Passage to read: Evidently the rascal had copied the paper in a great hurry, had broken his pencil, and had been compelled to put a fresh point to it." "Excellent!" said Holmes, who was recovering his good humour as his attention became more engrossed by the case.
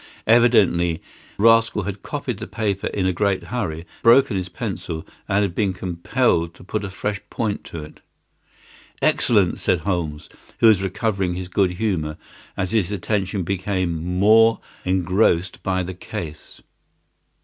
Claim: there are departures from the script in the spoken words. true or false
true